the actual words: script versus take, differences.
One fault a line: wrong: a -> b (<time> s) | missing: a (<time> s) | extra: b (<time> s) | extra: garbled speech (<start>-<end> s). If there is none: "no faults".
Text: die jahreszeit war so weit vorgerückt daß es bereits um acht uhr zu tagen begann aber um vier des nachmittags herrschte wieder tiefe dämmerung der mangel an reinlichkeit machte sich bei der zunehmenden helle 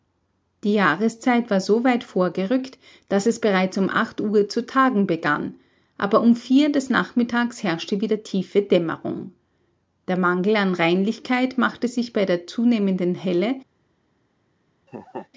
no faults